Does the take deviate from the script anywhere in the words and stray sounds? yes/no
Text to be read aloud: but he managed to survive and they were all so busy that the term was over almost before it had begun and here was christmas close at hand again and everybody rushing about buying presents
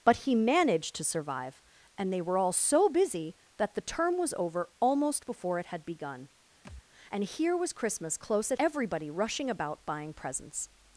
yes